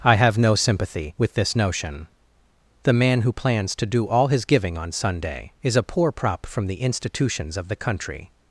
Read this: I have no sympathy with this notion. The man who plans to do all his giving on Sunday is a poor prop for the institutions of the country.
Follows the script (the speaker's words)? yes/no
no